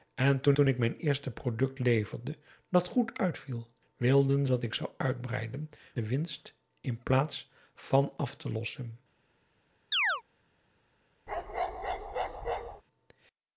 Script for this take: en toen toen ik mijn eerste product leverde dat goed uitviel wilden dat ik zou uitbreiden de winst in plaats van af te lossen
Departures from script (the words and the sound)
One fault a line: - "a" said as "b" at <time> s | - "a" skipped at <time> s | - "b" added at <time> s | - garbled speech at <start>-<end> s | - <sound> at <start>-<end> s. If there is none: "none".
- chirp at 9.9-10.2 s
- bark at 11.3-12.8 s